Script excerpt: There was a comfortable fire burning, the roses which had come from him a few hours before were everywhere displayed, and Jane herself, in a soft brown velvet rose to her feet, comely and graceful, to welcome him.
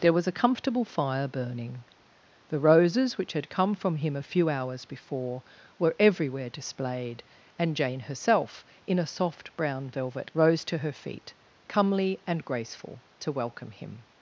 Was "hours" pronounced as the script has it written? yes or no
yes